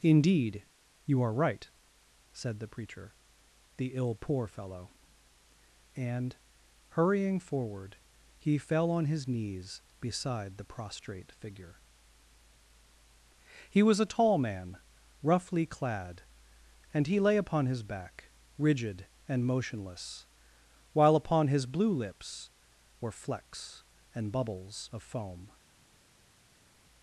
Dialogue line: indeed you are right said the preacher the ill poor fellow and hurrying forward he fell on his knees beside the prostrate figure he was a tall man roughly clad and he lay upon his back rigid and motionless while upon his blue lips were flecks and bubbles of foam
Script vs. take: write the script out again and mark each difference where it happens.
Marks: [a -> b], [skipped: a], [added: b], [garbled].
indeed you are right said the preacher the ill poor fellow and hurrying forward he fell on his knees beside the prostrate figure he was a tall man roughly clad and he lay upon his back rigid and motionless while upon his blue lips were flecks and bubbles of foam